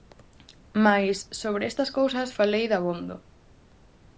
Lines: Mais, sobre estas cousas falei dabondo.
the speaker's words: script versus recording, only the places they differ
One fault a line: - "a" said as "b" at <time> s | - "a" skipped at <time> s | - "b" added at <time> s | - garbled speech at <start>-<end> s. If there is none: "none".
none